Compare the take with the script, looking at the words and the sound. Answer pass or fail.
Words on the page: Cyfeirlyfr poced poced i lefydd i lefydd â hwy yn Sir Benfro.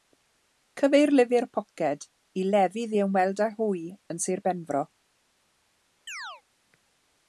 fail